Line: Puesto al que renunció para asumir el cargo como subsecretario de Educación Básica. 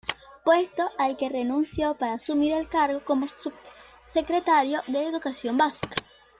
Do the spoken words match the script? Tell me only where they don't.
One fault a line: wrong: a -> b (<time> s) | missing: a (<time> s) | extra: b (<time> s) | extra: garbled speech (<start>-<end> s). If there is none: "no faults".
no faults